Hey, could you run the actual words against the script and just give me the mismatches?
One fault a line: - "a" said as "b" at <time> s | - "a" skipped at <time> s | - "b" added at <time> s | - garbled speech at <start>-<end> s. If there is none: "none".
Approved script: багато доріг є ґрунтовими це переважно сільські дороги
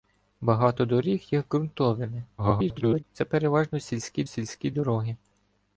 - garbled speech at 2.4-3.0 s
- "сільські" added at 4.2 s